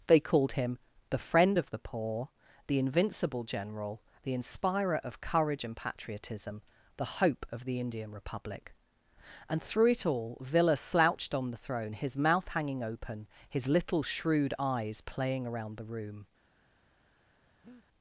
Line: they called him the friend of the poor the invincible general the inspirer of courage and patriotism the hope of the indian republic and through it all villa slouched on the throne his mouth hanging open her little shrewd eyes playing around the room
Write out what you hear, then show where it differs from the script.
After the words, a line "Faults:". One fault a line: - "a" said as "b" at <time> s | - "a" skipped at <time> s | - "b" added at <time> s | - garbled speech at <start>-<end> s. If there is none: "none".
they called him the friend of the poor the invincible general the inspirer of courage and patriotism the hope of the indian republic and through it all villa slouched on the throne his mouth hanging open his little shrewd eyes playing around the room
Faults:
- "her" said as "his" at 13.5 s